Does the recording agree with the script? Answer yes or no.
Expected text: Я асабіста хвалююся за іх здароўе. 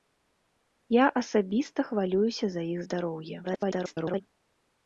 no